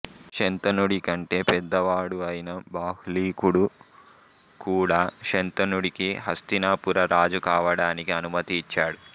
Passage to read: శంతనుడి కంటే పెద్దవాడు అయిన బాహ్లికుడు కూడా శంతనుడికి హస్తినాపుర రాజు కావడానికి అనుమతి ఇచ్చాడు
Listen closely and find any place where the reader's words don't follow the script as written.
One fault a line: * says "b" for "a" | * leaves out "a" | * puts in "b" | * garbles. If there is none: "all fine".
all fine